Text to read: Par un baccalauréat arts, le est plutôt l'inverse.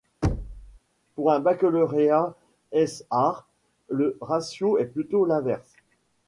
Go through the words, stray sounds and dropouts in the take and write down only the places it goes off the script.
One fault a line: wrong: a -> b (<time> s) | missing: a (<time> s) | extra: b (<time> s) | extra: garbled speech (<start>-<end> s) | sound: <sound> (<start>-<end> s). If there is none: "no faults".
sound: thud (0.2-0.8 s)
wrong: Par -> Pour (1.1 s)
extra: ès (2.7 s)
extra: ratio (4.2 s)